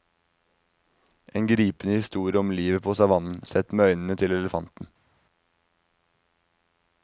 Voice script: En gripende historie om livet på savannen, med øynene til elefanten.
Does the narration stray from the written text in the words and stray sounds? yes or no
yes